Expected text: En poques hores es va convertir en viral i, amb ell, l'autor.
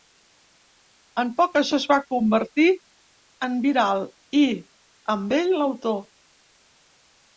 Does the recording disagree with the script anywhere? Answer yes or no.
yes